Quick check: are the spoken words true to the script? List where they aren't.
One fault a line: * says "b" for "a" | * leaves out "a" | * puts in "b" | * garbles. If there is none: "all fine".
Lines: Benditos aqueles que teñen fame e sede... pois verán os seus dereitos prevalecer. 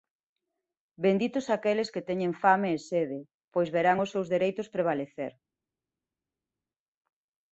all fine